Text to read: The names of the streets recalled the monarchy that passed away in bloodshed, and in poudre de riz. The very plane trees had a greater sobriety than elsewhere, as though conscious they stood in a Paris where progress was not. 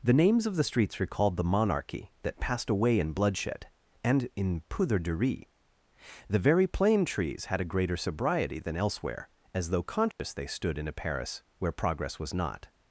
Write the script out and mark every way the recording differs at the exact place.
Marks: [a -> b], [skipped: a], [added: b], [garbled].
The names of the streets recalled the monarchy that passed away in bloodshed, and in poudre de riz. The very plane trees had a greater sobriety than elsewhere, as though conscious they stood in a Paris where progress was not.